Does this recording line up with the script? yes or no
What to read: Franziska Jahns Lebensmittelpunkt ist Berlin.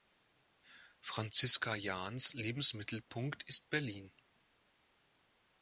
yes